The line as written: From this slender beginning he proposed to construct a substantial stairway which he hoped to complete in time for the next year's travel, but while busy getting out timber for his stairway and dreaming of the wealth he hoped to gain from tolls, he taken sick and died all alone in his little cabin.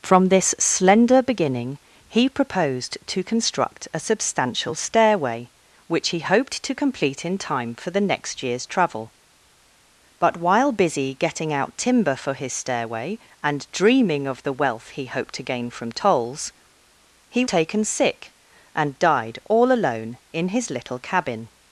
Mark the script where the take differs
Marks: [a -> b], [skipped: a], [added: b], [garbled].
From this slender beginning he proposed to construct a substantial stairway which he hoped to complete in time for the next year's travel, but while busy getting out timber for his stairway and dreaming of the wealth he hoped to gain from tolls, he taken sick and died all alone in his little cabin.